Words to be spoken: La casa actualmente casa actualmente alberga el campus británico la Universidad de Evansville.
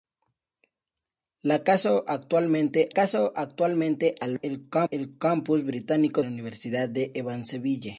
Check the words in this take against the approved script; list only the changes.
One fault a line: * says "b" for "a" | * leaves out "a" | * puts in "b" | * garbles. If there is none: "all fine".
all fine